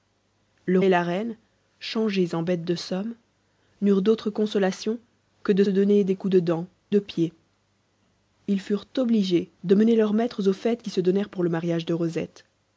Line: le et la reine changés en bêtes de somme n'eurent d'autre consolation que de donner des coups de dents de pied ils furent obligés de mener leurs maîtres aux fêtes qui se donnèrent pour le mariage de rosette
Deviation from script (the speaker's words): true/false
false